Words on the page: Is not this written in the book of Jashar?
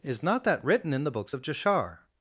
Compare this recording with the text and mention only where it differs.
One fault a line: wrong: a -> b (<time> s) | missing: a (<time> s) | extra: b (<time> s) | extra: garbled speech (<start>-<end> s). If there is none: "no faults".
wrong: this -> that (0.5 s)
wrong: book -> books (1.1 s)